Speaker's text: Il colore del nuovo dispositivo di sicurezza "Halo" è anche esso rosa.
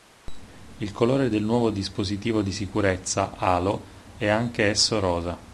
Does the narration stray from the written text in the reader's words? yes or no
no